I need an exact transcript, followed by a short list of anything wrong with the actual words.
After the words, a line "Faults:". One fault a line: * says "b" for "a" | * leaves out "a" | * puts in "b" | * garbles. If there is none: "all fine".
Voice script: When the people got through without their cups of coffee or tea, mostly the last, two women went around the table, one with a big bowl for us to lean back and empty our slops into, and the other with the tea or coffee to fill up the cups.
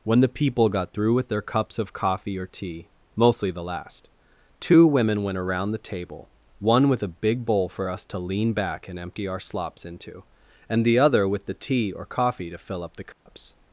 When the people got through with their cups of coffee or tea, mostly the last, two women went around the table, one with a big bowl for us to lean back and empty our slops into, and the other with the tea or coffee to fill up the cups.
Faults:
* says "with" for "without"